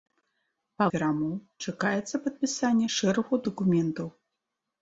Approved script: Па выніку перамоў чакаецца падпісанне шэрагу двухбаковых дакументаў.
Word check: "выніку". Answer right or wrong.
wrong